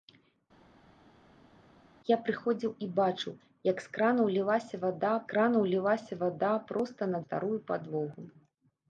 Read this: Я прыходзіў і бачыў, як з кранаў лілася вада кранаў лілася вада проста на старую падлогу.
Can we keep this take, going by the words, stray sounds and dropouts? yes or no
yes